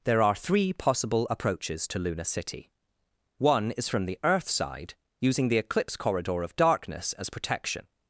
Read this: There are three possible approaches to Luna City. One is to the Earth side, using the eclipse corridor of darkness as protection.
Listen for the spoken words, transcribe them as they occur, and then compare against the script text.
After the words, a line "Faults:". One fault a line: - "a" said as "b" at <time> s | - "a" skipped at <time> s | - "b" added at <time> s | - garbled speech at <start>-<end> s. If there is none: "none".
There are three possible approaches to Luna City. One is from the Earth side, using the eclipse corridor of darkness as protection.
Faults:
- "to" said as "from" at 3.9 s